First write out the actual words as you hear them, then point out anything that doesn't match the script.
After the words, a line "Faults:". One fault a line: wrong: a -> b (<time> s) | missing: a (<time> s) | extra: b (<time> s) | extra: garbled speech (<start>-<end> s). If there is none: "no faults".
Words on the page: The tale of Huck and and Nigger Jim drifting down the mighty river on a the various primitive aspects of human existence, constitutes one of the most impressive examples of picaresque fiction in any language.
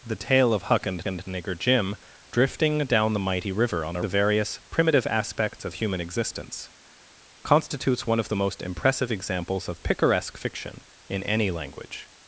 The tale of Huck and and Nigger Jim drifting down the mighty river on a the various primitive aspects of human existence, constitutes one of the most impressive examples of picaresque fiction in any language.
Faults:
no faults